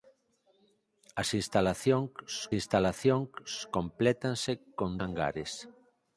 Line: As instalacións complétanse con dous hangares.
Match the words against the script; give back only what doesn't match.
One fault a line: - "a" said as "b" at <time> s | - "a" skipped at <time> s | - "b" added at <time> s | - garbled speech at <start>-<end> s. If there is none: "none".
- "instalacións" added at 2.6 s
- "dous" skipped at 4.9 s